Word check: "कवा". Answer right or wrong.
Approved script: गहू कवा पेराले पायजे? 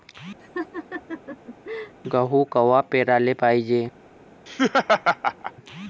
right